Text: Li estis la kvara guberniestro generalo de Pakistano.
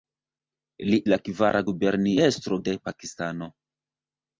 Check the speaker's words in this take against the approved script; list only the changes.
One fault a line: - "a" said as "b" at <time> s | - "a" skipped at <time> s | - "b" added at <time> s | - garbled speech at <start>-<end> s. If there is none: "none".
- "estis" skipped at 1.0 s
- "generalo" skipped at 2.6 s